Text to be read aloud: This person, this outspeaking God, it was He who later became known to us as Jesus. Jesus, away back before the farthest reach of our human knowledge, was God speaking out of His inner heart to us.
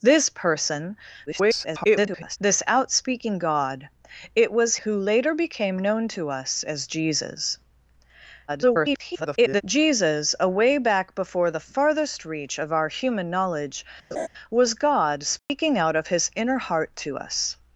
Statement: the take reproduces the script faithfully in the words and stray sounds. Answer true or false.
false